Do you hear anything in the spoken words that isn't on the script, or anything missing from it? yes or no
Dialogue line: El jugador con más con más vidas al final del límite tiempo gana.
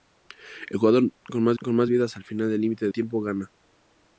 no